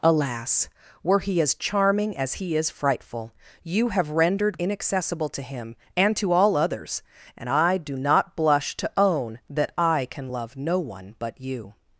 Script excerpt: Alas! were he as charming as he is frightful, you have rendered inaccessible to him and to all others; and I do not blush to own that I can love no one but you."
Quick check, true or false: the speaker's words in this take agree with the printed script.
true